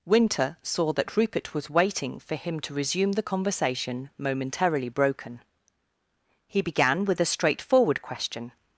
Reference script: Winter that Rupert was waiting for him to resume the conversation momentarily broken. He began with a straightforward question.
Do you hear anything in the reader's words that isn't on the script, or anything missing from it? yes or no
yes